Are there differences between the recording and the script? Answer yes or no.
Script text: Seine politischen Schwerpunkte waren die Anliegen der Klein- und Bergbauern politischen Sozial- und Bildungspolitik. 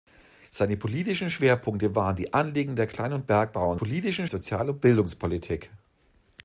no